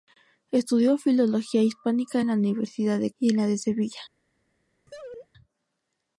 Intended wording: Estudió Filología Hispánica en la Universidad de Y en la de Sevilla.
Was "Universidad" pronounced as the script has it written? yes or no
yes